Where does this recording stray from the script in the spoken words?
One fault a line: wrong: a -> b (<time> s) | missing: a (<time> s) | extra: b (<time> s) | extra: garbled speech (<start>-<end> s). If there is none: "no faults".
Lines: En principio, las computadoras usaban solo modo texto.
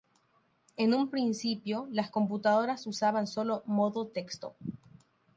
extra: un (0.9 s)